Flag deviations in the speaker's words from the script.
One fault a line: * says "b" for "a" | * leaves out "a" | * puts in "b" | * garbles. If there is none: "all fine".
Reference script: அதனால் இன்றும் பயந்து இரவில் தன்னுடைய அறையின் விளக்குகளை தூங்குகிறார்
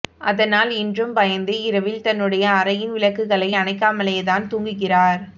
* puts in "அணைக்காமலேதான்"